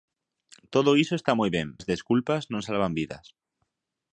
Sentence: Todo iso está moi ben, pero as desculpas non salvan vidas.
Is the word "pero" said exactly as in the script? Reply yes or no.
no